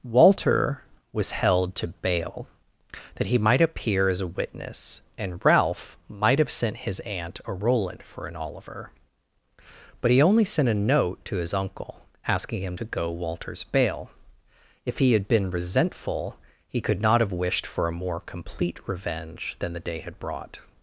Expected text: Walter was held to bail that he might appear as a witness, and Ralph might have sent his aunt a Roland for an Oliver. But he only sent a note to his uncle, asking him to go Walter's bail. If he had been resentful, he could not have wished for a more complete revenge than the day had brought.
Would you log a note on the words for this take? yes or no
no